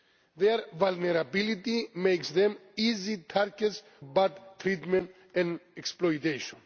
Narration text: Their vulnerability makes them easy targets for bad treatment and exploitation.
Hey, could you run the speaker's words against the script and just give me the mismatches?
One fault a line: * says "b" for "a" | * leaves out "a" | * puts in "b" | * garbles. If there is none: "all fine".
* leaves out "for"